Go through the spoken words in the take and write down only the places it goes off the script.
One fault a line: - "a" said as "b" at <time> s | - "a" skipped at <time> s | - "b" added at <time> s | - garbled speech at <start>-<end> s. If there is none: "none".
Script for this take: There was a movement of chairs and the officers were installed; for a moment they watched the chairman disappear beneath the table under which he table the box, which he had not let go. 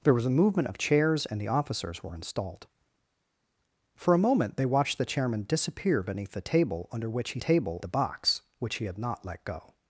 none